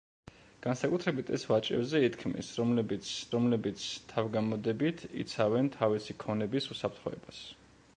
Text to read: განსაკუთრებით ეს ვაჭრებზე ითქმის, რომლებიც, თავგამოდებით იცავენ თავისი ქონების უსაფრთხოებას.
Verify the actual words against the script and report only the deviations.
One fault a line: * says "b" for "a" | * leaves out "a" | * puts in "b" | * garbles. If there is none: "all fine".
* puts in "რომლებიც"